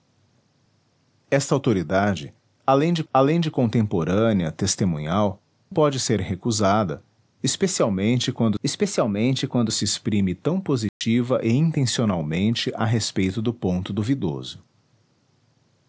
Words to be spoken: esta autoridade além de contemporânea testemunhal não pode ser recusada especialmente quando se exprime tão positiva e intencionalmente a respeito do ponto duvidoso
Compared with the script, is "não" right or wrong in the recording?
wrong